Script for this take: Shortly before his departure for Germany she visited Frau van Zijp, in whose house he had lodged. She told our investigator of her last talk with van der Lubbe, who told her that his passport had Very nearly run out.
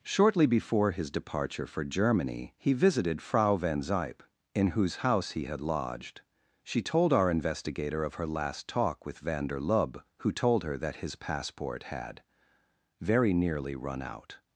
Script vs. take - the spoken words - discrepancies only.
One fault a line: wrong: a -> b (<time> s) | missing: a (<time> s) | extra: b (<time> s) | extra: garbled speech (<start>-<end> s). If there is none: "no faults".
wrong: she -> he (2.6 s)